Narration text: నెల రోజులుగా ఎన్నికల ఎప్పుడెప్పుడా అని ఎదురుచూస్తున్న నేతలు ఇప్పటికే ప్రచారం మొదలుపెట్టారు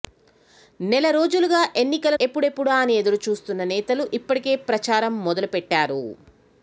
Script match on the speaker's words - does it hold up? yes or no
yes